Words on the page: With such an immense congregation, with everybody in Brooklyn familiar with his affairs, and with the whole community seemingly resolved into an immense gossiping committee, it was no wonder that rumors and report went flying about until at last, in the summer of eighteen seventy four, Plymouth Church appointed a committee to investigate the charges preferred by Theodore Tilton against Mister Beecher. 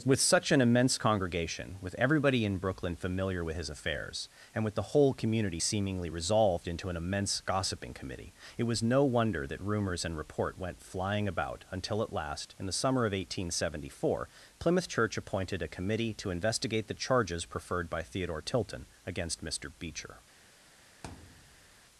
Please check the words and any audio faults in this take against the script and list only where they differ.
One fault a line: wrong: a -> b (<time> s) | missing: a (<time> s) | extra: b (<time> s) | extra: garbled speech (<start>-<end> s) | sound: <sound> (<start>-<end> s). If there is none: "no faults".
sound: thud (21.0-21.8 s)